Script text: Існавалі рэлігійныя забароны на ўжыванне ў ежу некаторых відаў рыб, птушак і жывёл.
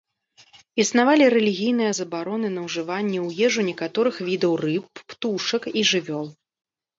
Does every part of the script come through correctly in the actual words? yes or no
yes